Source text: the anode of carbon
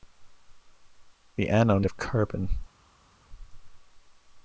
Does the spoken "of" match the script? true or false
true